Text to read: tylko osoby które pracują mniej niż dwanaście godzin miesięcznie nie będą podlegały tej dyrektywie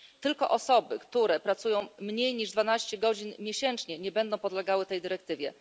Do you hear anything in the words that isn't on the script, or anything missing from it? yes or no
no